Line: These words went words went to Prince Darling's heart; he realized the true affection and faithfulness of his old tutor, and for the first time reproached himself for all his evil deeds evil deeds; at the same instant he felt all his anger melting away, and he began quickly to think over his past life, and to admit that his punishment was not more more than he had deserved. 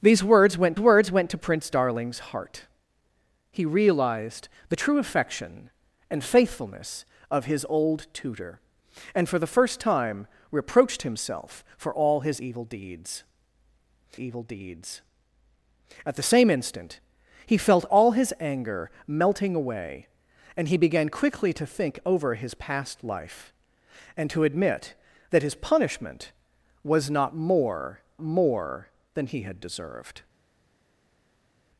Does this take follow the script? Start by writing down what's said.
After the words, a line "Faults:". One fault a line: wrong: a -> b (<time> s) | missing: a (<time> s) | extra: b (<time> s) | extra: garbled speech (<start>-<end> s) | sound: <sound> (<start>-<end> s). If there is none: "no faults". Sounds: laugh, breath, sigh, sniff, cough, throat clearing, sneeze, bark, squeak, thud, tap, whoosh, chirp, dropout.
These words went words went to Prince Darling's heart; he realized the true affection and faithfulness of his old tutor, and for the first time reproached himself for all his evil deeds evil deeds; at the same instant he felt all his anger melting away, and he began quickly to think over his past life, and to admit that his punishment was not more more than he had deserved.
Faults:
no faults